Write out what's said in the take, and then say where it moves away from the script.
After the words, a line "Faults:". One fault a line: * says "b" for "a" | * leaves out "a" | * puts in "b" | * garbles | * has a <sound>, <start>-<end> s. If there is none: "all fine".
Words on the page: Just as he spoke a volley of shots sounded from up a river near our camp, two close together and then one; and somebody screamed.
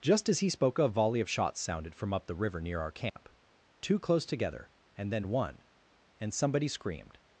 Just as he spoke a volley of shots sounded from up the river near our camp, two close together and then one; and somebody screamed.
Faults:
* says "the" for "a"
* has a dropout, 3.1-3.2 s